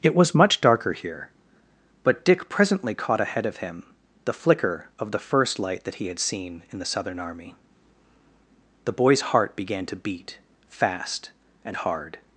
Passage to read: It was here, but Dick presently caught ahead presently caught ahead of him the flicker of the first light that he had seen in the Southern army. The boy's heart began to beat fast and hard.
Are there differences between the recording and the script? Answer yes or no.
yes